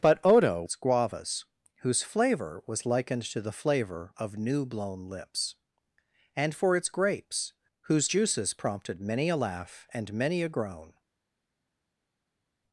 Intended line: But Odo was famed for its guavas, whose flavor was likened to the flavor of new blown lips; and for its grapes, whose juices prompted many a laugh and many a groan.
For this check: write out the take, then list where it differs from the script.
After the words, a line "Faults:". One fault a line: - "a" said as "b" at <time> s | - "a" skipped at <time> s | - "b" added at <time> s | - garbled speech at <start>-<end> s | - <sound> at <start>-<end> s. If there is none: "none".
But Odo its guavas, whose flavor was likened to the flavor of new blown lips; and for its grapes, whose juices prompted many a laugh and many a groan.
Faults:
- "was famed for" skipped at 0.6 s